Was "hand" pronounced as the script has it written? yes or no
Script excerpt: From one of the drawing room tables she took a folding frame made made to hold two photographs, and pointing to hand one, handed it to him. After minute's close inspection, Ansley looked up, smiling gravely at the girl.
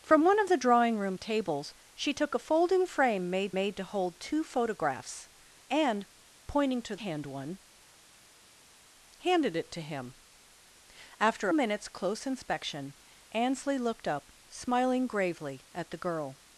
yes